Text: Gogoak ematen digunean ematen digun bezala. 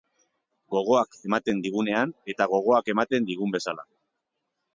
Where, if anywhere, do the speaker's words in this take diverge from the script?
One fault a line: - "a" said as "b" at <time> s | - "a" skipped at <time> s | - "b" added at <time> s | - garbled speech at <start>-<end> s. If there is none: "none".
- "eta gogoak" added at 2.3 s